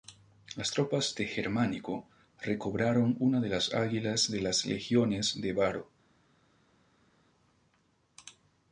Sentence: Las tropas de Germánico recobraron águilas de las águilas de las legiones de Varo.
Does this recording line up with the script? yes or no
no